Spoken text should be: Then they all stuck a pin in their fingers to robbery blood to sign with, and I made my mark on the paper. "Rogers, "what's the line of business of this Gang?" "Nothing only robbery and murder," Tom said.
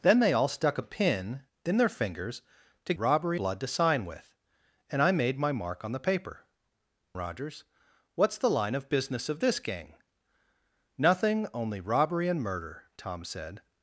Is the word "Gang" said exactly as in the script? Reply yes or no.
yes